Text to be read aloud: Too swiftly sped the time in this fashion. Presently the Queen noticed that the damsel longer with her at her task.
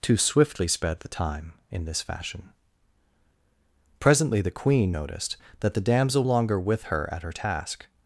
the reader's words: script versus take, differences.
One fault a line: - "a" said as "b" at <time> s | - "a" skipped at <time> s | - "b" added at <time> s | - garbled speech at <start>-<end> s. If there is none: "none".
none